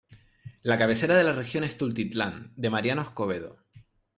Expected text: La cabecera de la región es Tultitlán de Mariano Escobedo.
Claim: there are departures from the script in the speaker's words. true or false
false